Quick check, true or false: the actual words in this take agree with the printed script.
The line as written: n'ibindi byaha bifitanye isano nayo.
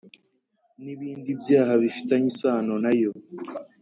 true